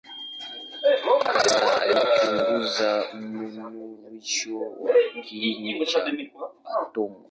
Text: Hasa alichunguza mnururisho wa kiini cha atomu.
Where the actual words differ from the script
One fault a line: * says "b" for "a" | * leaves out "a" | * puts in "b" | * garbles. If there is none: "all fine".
all fine